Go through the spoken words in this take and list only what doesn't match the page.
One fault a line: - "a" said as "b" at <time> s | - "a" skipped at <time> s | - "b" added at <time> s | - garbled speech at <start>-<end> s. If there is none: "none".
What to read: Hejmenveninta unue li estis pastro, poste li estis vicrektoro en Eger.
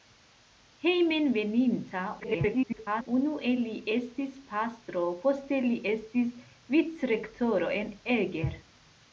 - garbled speech at 2.2-3.1 s